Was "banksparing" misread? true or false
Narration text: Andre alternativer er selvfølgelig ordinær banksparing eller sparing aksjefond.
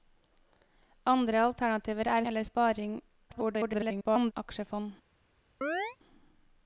true